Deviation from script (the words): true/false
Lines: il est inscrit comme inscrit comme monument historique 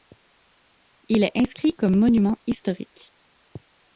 true